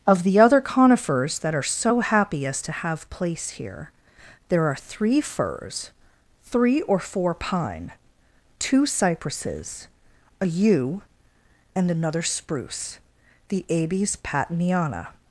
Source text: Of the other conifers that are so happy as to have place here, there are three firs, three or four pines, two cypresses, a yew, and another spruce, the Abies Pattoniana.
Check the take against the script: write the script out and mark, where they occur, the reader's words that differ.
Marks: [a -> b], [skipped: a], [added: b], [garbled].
Of the other conifers that are so happy as to have place here, there are three firs, three or four [pines, -> pine] two cypresses, a yew, and another spruce, the Abies Pattoniana.